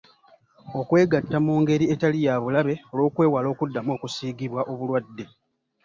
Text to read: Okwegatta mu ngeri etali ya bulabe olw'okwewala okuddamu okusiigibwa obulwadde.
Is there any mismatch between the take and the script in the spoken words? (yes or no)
no